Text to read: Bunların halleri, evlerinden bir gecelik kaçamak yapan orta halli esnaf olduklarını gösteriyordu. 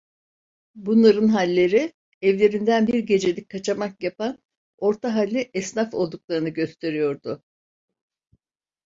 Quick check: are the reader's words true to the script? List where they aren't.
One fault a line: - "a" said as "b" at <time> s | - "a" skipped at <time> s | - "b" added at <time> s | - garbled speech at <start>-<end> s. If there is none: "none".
none